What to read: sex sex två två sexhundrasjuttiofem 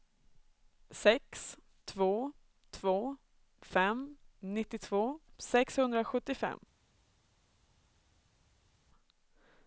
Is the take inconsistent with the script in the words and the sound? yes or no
yes